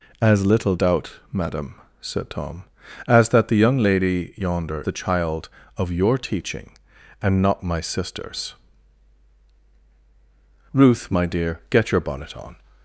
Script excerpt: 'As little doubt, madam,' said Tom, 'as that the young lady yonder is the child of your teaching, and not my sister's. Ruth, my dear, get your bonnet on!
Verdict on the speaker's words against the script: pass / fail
fail